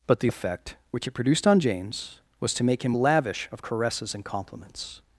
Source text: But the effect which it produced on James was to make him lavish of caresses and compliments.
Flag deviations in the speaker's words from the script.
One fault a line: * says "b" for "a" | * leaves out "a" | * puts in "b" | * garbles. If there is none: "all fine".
all fine